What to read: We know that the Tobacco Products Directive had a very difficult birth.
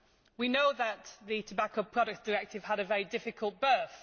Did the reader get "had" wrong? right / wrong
right